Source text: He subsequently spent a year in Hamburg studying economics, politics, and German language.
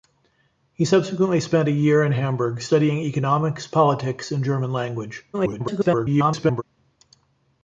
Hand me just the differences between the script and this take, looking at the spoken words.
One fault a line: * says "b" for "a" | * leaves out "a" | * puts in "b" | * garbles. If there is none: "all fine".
* garbles